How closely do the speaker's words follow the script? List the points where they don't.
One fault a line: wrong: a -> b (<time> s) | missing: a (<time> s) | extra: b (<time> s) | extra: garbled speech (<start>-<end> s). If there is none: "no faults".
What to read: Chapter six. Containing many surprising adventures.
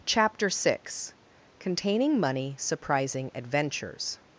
wrong: many -> money (2.2 s)